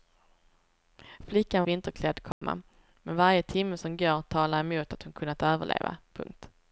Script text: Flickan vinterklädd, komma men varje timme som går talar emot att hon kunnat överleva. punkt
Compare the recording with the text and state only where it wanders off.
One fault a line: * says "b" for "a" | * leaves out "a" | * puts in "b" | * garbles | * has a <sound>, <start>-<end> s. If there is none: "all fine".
* has a dropout, 2.3-2.4 s